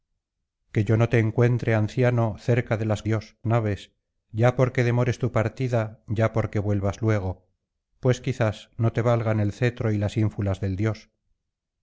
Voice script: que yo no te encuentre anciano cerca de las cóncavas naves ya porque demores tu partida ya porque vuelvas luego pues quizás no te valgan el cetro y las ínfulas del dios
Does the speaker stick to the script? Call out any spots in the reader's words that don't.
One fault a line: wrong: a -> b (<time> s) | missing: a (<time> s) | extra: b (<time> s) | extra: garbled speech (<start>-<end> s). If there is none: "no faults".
wrong: cóncavas -> dios (3.0 s)